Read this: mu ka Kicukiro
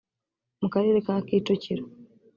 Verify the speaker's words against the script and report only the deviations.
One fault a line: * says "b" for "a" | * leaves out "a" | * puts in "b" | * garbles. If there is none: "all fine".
* puts in "karere"